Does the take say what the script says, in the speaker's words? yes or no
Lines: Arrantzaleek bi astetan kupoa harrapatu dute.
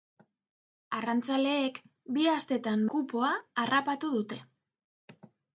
yes